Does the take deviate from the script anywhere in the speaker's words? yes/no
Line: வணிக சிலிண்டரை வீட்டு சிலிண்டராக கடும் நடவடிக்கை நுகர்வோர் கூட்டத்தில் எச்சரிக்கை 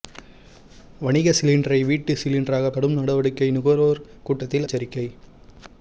no